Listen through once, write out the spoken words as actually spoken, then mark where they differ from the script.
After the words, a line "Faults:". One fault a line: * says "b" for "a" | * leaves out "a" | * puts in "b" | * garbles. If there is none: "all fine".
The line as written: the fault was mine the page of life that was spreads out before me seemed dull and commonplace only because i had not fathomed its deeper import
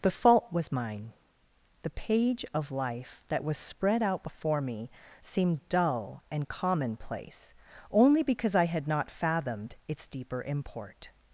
the fault was mine the page of life that was spread out before me seemed dull and commonplace only because i had not fathomed its deeper import
Faults:
* says "spread" for "spreads"